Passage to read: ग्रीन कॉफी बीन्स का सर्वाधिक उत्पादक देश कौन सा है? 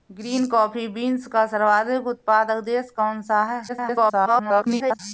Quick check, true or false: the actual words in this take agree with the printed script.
false